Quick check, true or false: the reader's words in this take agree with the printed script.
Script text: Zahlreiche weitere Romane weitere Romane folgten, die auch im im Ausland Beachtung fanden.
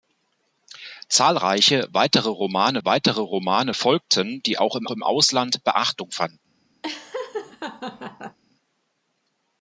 true